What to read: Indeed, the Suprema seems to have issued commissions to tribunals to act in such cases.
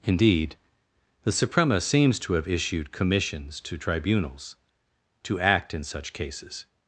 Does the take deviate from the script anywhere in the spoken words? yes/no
no